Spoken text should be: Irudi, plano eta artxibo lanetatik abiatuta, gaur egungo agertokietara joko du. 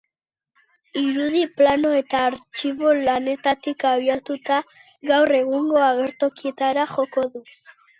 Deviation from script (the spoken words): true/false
false